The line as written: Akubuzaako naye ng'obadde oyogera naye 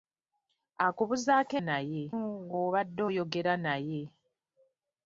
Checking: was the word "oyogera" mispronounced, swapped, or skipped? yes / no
no